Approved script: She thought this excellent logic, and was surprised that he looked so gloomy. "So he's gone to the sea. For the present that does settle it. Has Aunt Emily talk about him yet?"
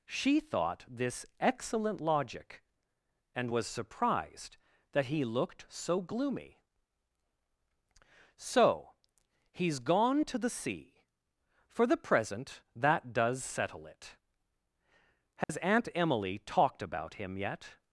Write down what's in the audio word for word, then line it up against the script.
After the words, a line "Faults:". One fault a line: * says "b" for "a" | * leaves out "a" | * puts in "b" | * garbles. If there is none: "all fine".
She thought this excellent logic, and was surprised that he looked so gloomy. "So he's gone to the sea. For the present that does settle it. Has Aunt Emily talked about him yet?"
Faults:
* says "talked" for "talk"